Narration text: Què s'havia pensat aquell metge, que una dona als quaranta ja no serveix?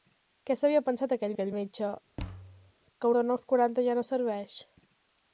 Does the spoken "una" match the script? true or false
false